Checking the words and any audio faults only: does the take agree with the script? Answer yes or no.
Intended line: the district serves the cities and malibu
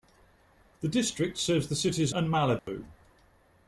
no